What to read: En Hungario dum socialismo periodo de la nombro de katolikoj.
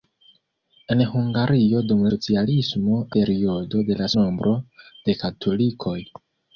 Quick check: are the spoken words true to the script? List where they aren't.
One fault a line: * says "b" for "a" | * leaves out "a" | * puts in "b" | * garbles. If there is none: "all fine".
all fine